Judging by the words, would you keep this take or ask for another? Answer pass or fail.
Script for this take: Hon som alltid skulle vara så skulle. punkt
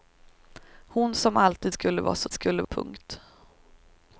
pass